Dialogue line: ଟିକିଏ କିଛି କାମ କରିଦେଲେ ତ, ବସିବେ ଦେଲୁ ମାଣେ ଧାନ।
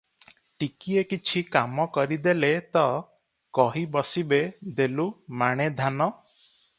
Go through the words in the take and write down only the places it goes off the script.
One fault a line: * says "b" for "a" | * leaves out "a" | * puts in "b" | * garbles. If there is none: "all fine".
* puts in "କହି"